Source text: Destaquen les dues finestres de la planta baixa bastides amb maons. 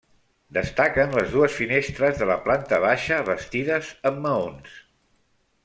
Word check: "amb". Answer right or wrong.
right